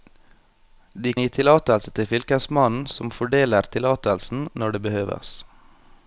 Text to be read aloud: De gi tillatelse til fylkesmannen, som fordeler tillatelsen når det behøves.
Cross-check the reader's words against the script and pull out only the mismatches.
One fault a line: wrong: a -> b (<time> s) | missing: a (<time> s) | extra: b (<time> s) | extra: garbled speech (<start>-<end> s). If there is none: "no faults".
no faults